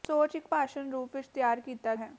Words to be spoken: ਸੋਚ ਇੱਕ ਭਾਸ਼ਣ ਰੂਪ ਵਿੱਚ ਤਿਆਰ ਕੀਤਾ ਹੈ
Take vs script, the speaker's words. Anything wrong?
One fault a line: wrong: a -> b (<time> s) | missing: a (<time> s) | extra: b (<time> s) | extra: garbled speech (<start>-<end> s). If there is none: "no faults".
no faults